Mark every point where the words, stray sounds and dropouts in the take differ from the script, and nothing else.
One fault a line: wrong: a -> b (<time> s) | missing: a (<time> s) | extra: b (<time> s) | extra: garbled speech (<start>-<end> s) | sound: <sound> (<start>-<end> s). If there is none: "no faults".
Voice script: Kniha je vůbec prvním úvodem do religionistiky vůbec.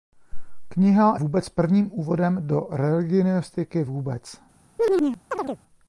missing: je (1.2 s)
sound: chirp (4.8-5.6 s)